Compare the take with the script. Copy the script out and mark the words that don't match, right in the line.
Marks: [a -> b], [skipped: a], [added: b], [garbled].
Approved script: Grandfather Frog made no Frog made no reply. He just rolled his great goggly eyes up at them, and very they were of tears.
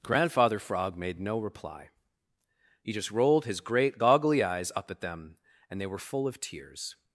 Grandfather Frog made no [skipped: Frog made no] reply. He just rolled his great goggly eyes up at them, and [skipped: very] they were [added: full] of tears.